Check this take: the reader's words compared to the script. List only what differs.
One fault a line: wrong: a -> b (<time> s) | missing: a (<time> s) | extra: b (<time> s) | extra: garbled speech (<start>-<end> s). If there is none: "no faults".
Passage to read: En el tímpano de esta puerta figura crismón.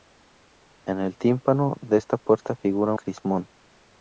no faults